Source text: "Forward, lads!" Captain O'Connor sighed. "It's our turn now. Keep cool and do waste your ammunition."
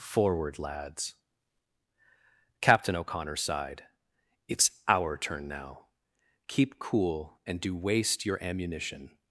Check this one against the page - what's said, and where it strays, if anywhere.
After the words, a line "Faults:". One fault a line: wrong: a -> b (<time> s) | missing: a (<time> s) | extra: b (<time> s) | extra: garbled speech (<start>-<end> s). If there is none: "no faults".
"Forward, lads!" Captain O'Connor sighed. "It's our turn now. Keep cool and do waste your ammunition."
Faults:
no faults